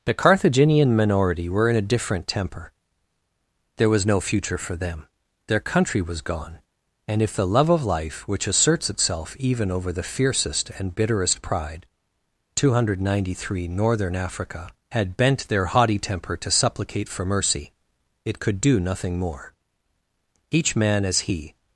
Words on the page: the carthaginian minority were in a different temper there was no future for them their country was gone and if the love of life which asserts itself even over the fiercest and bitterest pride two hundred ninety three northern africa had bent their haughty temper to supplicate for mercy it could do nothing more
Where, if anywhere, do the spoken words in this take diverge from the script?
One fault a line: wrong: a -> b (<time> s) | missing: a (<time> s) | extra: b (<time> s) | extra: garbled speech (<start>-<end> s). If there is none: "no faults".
extra: each man as he (20.5 s)